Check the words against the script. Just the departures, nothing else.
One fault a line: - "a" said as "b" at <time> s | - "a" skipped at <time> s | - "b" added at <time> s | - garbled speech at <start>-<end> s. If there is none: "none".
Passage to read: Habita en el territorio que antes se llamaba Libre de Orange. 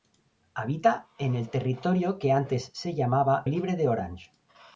none